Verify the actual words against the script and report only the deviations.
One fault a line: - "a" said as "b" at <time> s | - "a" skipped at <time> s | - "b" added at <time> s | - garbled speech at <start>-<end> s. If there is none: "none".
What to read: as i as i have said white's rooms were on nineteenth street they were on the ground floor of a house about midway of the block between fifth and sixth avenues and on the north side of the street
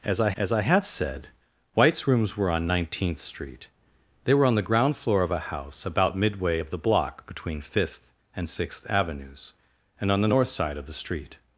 none